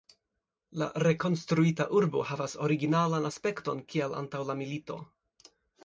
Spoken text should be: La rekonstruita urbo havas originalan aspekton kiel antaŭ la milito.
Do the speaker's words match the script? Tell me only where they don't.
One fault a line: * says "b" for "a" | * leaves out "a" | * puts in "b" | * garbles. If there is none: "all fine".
all fine